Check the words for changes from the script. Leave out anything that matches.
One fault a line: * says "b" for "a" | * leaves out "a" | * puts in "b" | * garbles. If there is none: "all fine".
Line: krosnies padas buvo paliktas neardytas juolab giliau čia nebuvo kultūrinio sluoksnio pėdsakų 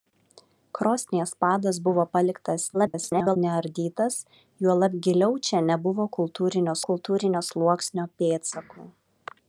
* garbles
* puts in "kultūrinio"